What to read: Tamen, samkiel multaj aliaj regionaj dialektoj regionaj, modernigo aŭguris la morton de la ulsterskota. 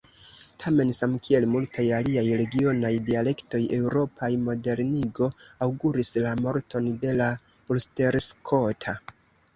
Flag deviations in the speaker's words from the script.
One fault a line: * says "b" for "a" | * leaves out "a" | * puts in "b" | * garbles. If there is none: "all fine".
* says "eŭropaj" for "regionaj"